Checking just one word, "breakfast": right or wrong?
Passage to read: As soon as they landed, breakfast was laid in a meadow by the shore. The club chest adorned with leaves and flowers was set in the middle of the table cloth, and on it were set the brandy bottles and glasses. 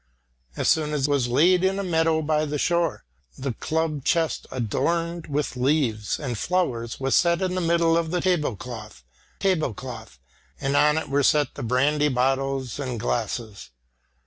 wrong